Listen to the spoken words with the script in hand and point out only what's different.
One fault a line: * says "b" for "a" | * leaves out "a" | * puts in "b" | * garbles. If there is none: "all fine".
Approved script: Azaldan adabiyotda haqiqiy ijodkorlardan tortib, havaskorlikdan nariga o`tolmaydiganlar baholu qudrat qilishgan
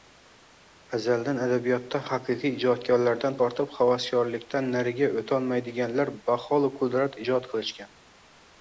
* puts in "ijod"